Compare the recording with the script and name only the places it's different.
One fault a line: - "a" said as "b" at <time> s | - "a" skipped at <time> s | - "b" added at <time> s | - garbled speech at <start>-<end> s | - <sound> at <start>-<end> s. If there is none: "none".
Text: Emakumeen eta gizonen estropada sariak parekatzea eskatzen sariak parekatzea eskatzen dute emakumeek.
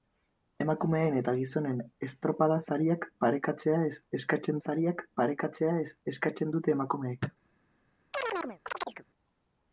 - chirp at 8.1-9.0 s